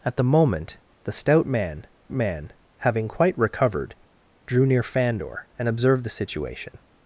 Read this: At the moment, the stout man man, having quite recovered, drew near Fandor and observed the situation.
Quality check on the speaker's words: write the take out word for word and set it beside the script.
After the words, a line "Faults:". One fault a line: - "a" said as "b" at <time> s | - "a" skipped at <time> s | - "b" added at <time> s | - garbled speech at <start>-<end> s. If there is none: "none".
At the moment, the stout man man, having quite recovered, drew near Fandor and observed the situation.
Faults:
none